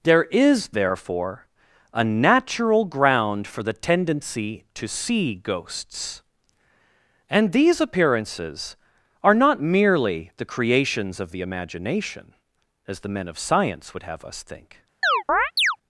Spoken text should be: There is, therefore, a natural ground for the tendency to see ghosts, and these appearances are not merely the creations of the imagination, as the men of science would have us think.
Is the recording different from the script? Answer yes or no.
no